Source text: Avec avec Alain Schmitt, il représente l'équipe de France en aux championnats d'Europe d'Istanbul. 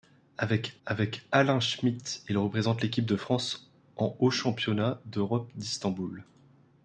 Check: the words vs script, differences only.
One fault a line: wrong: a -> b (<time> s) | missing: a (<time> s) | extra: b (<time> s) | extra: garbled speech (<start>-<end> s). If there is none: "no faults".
no faults